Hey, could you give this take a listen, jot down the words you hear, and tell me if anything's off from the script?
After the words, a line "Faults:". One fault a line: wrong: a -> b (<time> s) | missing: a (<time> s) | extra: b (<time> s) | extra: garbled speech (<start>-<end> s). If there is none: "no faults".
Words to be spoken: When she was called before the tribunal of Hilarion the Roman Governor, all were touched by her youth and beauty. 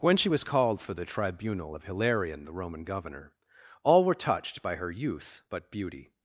When she was called for the tribunal of Hilarion the Roman Governor, all were touched by her youth but beauty.
Faults:
wrong: before -> for (0.8 s)
wrong: and -> but (5.5 s)